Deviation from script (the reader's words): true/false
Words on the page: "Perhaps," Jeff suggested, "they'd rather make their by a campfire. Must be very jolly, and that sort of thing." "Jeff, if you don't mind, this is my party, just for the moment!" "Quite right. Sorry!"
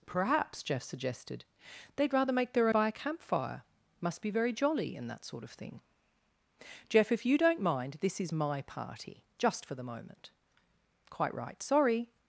false